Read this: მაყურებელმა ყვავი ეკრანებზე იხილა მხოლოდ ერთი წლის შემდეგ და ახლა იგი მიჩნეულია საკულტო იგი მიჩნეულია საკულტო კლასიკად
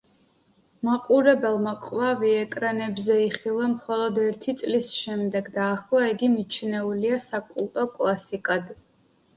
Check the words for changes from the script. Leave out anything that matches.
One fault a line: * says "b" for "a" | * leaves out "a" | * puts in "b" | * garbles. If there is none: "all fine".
* leaves out "იგი მიჩნეულია საკულტო"